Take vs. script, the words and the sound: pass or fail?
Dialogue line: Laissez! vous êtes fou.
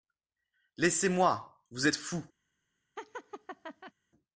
fail